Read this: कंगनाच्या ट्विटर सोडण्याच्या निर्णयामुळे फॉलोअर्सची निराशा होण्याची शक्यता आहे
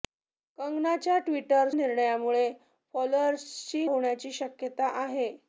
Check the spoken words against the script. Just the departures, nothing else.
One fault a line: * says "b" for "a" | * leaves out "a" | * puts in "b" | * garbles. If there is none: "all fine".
* leaves out "सोडण्याच्या"
* leaves out "निराशा"